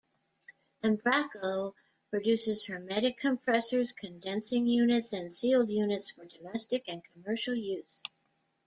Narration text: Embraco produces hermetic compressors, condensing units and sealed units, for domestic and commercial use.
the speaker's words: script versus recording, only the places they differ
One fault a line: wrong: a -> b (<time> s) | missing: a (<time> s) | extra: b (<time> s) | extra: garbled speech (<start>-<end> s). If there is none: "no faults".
no faults